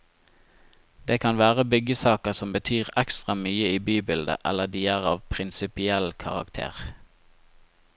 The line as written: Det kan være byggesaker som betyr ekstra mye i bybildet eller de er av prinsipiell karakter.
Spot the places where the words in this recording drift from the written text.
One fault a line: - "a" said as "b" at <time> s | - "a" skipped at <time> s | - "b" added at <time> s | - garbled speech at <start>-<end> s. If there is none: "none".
none